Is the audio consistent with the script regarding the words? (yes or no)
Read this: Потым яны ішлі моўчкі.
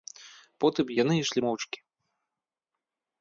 yes